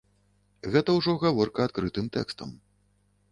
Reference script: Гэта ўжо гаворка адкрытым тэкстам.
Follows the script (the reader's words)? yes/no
yes